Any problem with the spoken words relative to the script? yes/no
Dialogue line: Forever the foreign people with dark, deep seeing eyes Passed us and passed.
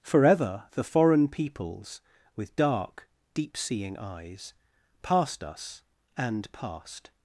yes